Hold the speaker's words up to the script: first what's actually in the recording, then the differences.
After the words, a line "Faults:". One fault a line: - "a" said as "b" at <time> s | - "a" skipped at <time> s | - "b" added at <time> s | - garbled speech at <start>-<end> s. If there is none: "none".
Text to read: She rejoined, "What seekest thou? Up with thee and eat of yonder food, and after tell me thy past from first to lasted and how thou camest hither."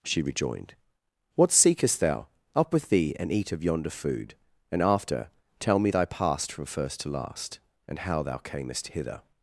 She rejoined, "What seekest thou? Up with thee and eat of yonder food, and after tell me thy past from first to last and how thou camest hither."
Faults:
- "lasted" said as "last" at 7.1 s